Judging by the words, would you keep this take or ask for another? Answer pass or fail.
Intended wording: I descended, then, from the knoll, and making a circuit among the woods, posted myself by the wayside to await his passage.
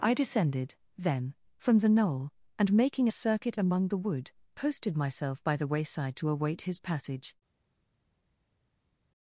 fail